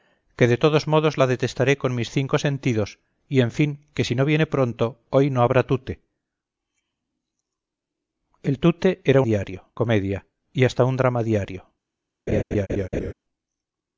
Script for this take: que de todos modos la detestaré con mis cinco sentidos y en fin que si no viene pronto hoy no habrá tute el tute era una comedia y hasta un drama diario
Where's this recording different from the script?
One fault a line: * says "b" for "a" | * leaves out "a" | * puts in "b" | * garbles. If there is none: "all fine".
* says "diario" for "una"